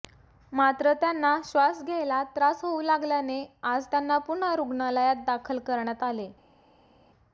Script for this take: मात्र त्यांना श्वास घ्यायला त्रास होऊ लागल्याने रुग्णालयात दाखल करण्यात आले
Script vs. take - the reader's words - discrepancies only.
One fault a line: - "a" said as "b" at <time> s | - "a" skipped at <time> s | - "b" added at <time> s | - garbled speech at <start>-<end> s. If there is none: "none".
- "आज त्यांना पुन्हा" added at 3.6 s